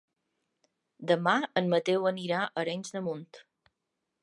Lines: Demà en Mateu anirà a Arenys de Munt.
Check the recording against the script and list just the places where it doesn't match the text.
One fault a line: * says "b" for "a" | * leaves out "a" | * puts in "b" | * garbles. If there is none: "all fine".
all fine